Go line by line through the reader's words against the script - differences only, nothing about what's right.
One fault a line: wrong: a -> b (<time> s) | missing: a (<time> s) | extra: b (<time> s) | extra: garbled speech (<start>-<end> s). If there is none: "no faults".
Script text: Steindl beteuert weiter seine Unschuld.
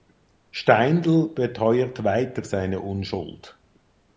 no faults